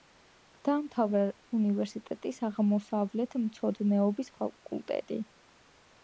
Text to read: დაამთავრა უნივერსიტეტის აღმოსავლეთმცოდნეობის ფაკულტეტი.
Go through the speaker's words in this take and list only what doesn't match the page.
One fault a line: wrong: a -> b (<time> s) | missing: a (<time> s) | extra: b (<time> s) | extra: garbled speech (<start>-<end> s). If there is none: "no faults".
no faults